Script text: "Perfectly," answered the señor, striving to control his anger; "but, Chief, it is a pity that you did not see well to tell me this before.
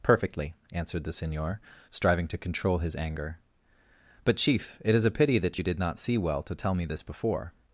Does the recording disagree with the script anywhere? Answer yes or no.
no